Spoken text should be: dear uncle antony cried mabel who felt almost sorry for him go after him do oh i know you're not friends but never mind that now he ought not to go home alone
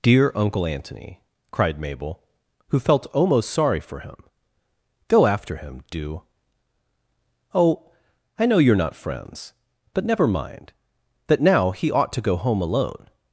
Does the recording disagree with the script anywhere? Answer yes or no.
yes